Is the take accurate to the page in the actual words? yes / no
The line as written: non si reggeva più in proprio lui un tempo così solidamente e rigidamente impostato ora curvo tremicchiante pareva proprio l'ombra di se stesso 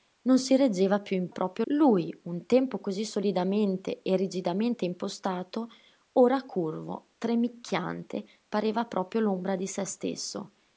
yes